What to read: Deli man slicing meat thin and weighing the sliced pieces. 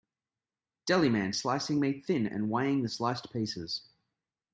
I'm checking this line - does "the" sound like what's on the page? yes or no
yes